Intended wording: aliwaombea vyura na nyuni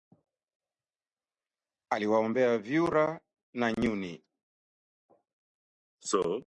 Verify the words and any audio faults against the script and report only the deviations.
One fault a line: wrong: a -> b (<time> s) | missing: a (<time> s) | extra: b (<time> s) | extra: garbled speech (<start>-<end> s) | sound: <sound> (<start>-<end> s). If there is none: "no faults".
no faults